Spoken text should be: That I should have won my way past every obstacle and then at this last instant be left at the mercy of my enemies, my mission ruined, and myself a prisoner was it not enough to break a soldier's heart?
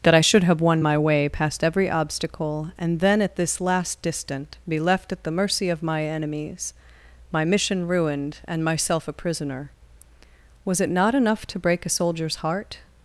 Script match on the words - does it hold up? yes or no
no